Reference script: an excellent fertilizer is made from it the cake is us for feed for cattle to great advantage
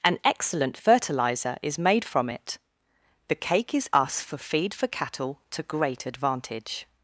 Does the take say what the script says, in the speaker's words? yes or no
yes